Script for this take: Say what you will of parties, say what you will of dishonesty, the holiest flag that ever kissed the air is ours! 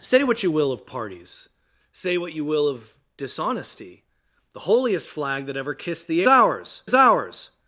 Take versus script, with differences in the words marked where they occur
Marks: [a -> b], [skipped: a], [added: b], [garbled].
Say what you will of parties, say what you will of dishonesty, the holiest flag that ever kissed the [air -> ours] is ours!